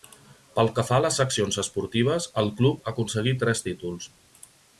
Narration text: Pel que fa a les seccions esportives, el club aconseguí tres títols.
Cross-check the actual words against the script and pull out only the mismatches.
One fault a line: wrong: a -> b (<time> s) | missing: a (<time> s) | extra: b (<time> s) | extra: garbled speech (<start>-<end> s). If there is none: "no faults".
no faults